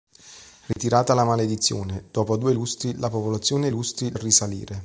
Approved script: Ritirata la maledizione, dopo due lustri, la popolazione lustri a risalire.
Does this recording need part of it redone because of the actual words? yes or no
no